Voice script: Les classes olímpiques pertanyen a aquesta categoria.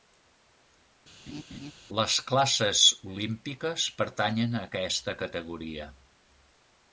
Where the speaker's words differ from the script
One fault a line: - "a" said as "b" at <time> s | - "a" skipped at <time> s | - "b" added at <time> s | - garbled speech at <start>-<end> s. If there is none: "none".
none